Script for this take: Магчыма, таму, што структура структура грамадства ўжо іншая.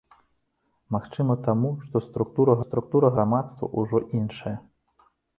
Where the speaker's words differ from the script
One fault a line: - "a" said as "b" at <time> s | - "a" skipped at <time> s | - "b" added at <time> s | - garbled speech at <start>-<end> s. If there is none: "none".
none